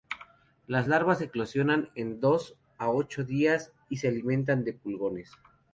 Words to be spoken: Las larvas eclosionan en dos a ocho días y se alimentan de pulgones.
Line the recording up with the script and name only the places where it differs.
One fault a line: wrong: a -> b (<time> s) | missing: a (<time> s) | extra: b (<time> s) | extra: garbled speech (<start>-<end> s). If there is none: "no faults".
no faults